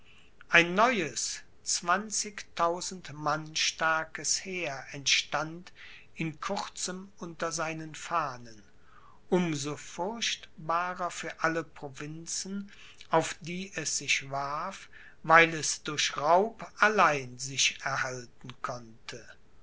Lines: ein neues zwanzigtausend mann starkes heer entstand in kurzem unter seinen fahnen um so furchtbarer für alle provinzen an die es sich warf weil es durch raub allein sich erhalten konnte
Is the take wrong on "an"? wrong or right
wrong